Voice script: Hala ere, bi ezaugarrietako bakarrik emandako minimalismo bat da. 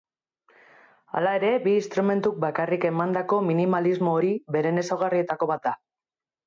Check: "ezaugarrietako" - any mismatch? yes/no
yes